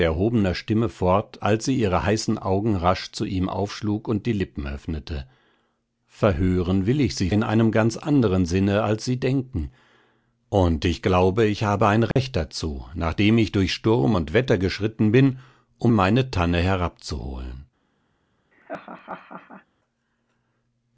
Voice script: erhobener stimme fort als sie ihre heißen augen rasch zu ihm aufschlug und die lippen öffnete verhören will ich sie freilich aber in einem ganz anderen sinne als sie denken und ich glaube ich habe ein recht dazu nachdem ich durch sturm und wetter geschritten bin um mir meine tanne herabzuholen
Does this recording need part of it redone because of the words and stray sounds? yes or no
yes